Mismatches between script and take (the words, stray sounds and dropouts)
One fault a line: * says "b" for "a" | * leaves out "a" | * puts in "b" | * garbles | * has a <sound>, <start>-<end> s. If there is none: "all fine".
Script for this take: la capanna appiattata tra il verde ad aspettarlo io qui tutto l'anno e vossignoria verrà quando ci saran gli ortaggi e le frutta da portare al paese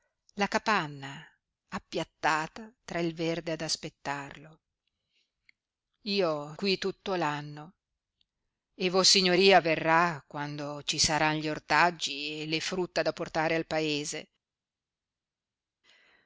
all fine